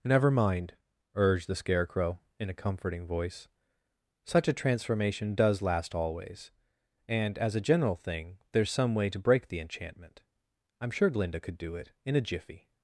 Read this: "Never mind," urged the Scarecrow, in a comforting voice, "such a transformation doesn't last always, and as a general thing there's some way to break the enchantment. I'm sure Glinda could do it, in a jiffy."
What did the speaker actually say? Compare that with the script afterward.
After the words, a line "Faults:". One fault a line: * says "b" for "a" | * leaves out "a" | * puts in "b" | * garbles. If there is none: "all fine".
"Never mind," urged the Scarecrow, in a comforting voice, "such a transformation does last always, and as a general thing there's some way to break the enchantment. I'm sure Glinda could do it, in a jiffy."
Faults:
* says "does" for "doesn't"